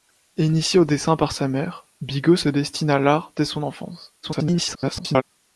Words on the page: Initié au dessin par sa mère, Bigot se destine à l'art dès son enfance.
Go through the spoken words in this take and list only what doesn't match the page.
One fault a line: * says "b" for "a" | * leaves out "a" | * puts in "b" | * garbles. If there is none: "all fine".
* garbles